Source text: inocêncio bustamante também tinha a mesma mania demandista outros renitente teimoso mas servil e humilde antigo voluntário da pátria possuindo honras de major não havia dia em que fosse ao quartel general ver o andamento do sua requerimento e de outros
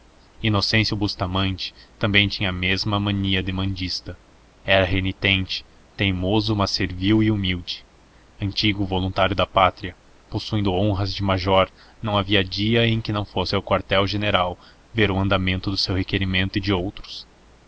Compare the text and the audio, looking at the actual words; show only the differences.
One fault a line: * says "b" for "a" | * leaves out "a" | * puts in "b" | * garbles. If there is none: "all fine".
* says "era" for "outros"
* puts in "não"
* says "seu" for "sua"